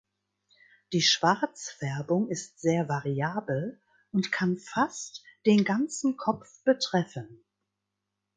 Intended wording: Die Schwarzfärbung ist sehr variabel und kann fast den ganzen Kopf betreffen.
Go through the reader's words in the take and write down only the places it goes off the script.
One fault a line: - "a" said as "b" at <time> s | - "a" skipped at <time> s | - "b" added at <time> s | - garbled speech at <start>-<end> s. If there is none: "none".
none